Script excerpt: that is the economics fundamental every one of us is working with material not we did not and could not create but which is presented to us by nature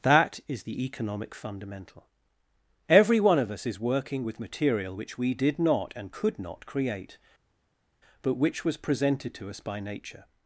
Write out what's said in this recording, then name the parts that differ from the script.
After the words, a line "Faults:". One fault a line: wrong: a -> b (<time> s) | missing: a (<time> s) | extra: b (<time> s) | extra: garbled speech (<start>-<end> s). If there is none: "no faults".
that is the economic fundamental every one of us is working with material which we did not and could not create but which was presented to us by nature
Faults:
wrong: economics -> economic (0.8 s)
wrong: not -> which (5.0 s)
wrong: is -> was (8.6 s)